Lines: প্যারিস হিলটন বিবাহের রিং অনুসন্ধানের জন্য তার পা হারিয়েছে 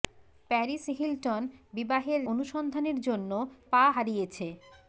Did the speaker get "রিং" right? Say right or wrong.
wrong